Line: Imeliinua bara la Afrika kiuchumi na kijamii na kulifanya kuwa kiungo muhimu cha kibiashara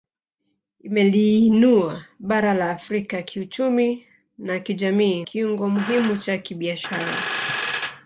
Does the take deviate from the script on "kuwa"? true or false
true